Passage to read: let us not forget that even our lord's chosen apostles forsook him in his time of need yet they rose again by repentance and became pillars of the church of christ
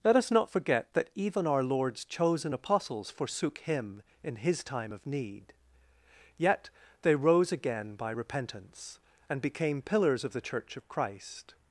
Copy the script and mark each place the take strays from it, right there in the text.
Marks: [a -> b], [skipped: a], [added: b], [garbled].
let us not forget that even our lord's chosen apostles forsook him in his time of need yet they rose again by repentance and became pillars of the church of christ